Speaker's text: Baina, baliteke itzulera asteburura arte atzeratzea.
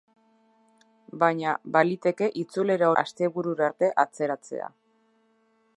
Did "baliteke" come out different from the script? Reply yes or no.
no